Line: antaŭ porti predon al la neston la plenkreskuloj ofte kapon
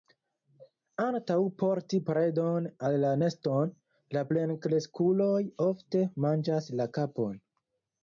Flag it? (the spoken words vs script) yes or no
yes